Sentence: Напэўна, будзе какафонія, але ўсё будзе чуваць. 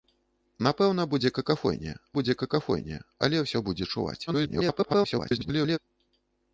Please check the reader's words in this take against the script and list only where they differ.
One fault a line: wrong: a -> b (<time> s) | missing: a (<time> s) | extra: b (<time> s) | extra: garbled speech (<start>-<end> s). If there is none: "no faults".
extra: будзе какафонія (2.1 s)
extra: garbled speech (4.3-5.8 s)